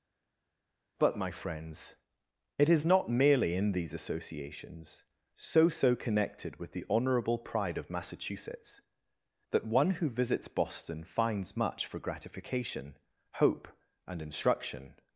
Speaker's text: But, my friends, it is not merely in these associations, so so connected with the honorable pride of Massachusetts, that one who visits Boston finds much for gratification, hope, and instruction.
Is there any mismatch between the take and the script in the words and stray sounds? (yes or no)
no